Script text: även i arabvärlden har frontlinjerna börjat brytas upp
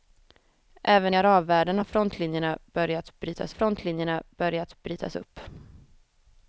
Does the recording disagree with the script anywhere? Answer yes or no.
yes